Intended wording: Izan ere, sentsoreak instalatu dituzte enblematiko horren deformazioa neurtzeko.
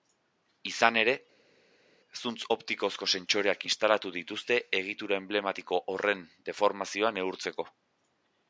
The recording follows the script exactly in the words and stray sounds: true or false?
false